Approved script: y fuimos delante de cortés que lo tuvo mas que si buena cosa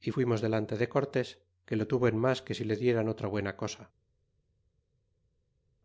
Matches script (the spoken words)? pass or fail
fail